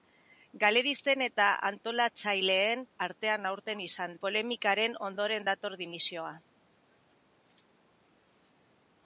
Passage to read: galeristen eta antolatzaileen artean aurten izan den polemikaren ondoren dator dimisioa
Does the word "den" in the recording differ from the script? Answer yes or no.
yes